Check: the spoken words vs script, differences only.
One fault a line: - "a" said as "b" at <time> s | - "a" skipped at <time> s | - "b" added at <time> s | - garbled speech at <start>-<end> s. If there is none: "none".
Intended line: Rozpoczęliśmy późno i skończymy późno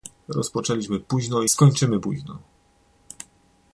none